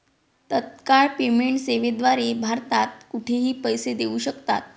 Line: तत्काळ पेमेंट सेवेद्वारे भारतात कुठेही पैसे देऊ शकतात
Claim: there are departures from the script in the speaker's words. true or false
false